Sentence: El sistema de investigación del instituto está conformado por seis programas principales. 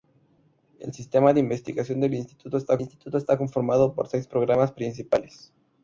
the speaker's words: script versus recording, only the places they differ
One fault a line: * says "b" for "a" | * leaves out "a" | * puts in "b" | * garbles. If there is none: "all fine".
* puts in "instituto está"